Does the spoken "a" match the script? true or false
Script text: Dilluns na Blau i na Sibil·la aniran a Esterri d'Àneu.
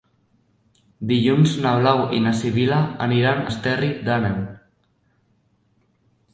false